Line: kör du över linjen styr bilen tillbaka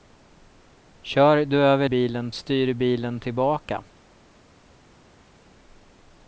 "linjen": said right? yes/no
no